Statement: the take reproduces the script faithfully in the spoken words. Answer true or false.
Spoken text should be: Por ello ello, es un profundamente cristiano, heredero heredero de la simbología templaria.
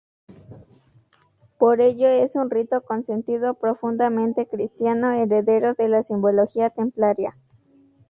false